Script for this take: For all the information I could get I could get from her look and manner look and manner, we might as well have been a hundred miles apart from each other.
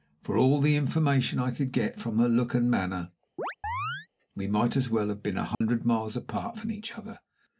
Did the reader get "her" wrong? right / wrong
right